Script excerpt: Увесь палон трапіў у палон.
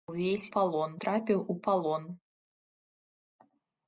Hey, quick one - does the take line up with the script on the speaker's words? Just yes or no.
yes